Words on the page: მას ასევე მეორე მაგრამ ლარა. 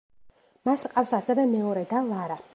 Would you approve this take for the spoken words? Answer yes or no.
no